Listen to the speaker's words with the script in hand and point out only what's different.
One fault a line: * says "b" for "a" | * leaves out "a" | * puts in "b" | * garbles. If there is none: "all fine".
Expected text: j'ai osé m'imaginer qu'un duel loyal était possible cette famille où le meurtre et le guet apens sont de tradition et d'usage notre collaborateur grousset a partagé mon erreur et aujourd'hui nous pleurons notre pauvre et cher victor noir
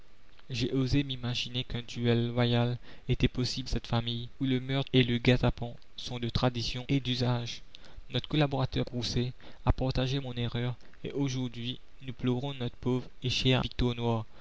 all fine